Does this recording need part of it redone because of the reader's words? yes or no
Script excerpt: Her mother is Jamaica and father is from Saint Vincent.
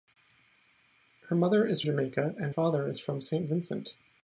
no